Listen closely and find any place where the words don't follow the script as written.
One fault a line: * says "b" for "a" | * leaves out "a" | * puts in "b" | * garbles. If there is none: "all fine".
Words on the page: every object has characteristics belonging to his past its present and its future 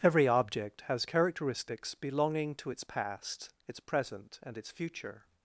* says "its" for "his"